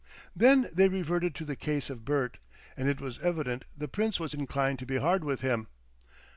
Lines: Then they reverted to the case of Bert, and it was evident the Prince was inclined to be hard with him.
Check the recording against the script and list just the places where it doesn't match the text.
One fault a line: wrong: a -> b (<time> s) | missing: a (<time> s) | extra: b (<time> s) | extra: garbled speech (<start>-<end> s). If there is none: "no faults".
no faults